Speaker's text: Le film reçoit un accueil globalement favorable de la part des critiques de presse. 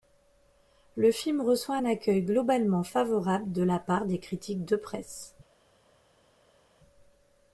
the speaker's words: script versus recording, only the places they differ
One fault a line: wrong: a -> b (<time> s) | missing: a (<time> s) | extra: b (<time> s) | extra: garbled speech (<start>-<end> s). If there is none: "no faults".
no faults